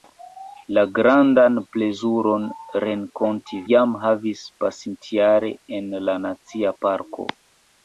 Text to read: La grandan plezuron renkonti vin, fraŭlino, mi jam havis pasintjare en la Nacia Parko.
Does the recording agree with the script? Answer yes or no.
no